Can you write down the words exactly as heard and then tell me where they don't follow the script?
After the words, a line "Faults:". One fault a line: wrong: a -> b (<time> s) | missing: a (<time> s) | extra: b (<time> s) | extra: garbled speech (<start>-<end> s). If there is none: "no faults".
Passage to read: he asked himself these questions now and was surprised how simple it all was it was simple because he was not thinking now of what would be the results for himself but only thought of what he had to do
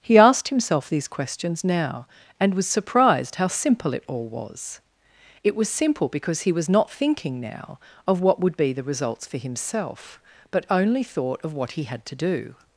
he asked himself these questions now and was surprised how simple it all was it was simple because he was not thinking now of what would be the results for himself but only thought of what he had to do
Faults:
no faults